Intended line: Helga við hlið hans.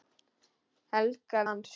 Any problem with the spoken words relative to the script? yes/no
yes